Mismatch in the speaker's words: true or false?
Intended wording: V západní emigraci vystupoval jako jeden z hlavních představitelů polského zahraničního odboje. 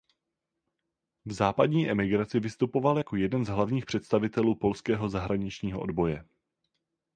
false